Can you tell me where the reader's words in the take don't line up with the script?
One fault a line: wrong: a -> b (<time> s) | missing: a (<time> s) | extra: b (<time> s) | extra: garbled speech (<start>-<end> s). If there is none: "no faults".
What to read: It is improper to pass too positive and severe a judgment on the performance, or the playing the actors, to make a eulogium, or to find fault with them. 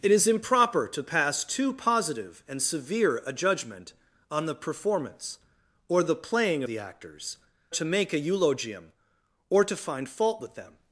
no faults